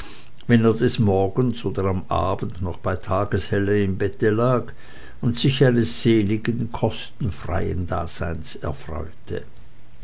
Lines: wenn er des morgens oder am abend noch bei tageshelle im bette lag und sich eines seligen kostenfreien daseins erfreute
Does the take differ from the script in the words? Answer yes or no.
no